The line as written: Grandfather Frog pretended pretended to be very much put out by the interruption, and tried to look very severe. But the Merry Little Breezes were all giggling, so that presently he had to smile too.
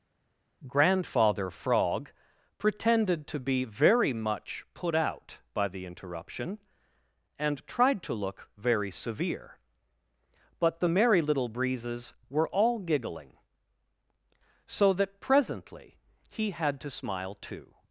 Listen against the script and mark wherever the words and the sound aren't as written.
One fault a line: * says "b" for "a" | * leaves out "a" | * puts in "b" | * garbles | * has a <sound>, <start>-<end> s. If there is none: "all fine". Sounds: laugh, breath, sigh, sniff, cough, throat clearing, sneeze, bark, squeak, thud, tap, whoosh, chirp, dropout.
* leaves out "pretended"